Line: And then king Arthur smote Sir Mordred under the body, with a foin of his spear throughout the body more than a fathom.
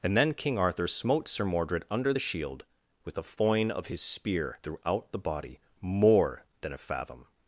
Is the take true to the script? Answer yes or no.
no